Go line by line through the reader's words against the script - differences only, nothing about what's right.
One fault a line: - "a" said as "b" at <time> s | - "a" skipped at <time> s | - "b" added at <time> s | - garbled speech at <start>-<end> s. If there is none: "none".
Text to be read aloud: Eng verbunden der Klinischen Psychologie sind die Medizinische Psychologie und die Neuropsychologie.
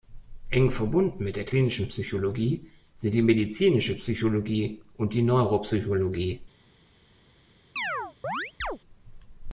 - "mit" added at 1.2 s